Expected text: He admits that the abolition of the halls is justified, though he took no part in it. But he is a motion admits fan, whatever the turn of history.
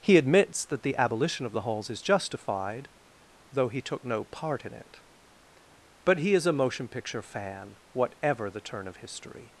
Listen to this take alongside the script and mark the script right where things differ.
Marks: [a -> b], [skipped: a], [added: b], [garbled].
He admits that the abolition of the halls is justified, though he took no part in it. But he is a motion [admits -> picture] fan, whatever the turn of history.